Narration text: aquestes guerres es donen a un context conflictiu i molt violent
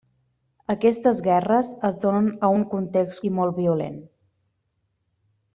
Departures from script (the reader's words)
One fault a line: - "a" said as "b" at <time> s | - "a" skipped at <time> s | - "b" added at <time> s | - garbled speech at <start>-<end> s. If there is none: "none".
- "conflictiu" skipped at 3.2 s